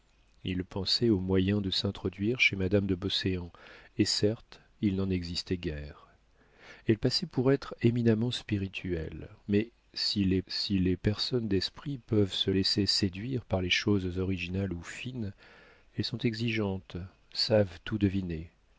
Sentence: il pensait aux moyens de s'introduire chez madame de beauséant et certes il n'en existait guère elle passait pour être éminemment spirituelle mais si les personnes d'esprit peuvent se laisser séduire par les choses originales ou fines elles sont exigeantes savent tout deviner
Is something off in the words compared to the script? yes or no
yes